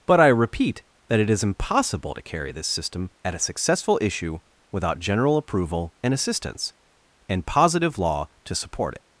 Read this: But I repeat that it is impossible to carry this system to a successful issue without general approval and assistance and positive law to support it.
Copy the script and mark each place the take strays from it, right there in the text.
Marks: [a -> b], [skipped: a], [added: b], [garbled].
But I repeat that it is impossible to carry this system [to -> at] a successful issue without general approval and assistance and positive law to support it.